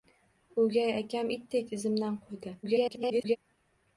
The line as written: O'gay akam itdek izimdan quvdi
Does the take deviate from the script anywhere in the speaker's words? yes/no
yes